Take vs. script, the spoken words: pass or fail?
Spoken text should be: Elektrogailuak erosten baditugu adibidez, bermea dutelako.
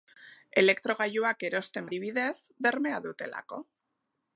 fail